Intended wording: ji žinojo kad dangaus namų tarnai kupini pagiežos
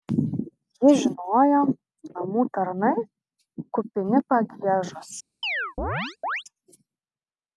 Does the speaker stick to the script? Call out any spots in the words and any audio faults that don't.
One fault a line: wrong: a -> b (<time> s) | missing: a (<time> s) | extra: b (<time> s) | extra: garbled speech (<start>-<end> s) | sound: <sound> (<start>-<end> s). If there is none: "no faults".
missing: kad dangaus (1.6 s)
sound: chirp (5.4-6.4 s)